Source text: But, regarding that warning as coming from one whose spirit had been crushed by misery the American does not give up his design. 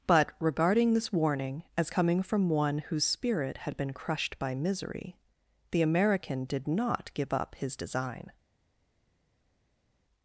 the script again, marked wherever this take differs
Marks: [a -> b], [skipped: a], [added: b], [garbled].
But, regarding [that -> this] warning as coming from one whose spirit had been crushed by misery the American [does -> did] not give up his design.